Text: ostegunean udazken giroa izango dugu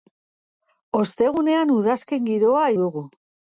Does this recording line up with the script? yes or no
no